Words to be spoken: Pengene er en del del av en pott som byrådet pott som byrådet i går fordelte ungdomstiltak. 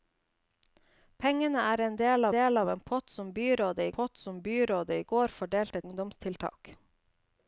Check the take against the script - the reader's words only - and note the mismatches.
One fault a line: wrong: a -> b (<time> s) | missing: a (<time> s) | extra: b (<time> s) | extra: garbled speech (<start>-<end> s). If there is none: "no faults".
no faults